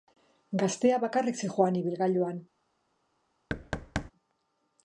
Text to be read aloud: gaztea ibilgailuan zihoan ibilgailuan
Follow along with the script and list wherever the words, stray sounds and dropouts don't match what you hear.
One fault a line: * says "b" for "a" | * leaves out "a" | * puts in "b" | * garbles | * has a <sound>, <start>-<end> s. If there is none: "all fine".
* says "bakarrik" for "ibilgailuan"
* has a thud, 3.5-4.1 s